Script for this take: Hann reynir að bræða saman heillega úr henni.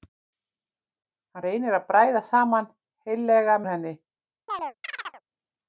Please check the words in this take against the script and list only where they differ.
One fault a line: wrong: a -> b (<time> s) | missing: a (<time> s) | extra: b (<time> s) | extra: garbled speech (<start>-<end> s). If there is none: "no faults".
no faults